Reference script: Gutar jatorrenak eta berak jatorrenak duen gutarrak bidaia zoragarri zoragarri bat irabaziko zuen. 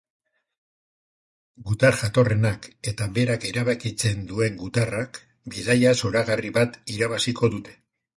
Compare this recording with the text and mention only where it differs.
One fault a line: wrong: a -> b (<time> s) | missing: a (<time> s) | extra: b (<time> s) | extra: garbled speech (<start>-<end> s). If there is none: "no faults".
wrong: jatorrenak -> erabakitzen (3.5 s)
missing: zoragarri (6.5 s)
wrong: zuen -> dute (7.6 s)